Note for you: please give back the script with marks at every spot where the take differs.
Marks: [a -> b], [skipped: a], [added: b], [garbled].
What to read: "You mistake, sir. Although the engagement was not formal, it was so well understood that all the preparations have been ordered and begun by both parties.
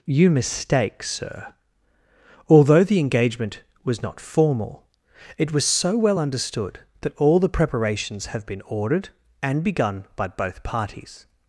"You mistake, sir. Although the engagement was not formal, it was so well understood that all the preparations have been ordered and begun by both parties.